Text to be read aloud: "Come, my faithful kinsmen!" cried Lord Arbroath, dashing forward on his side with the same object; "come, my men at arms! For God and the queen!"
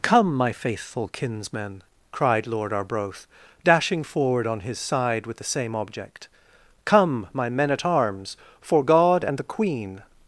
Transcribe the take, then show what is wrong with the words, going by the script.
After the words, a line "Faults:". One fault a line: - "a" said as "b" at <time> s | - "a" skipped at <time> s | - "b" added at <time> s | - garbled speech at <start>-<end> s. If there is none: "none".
"Come, my faithful kinsmen!" cried Lord Arbroath, dashing forward on his side with the same object; "come, my men at arms! For God and the queen!"
Faults:
none